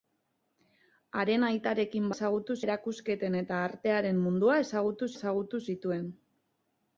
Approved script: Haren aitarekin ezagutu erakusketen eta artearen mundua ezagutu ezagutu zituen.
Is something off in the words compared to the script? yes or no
no